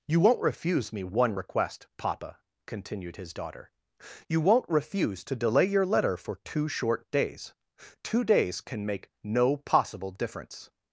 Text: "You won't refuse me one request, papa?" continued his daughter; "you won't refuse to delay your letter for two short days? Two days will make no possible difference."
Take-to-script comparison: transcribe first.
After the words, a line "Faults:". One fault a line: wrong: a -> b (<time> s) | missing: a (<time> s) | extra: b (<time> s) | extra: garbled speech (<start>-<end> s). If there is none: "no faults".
"You won't refuse me one request, papa?" continued his daughter; "you won't refuse to delay your letter for two short days? Two days can make no possible difference."
Faults:
wrong: will -> can (8.6 s)